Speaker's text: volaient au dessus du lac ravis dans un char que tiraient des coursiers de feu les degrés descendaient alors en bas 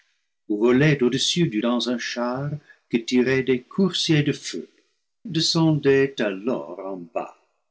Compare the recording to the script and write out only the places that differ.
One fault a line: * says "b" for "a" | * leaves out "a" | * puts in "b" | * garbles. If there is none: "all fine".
* leaves out "lac ravis"
* leaves out "les degrés"